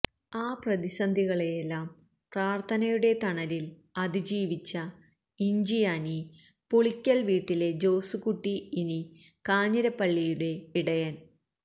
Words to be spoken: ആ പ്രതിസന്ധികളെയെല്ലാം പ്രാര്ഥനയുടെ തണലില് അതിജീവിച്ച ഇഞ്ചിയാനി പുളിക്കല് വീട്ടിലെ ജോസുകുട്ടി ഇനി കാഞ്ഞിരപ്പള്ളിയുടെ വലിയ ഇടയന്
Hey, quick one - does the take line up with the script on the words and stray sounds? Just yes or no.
no